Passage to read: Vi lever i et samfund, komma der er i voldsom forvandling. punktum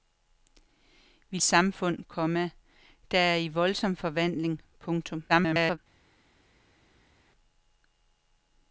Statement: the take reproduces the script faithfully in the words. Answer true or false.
false